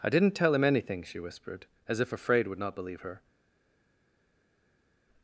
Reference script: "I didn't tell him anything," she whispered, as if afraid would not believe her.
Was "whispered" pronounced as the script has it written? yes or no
yes